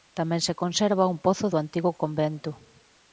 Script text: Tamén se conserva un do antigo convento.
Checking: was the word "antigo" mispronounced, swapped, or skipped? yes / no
no